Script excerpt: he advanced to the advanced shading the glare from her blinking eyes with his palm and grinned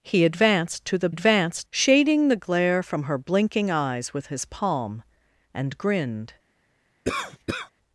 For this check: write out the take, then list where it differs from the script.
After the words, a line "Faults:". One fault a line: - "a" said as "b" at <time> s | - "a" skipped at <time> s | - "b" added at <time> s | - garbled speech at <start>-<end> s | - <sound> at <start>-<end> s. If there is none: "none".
he advanced to the advanced shading the glare from her blinking eyes with his palm and grinned
Faults:
- cough at 7.0-7.7 s